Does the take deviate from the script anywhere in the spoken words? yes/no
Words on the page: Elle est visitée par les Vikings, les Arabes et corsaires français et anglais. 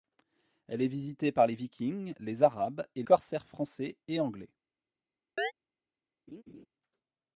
no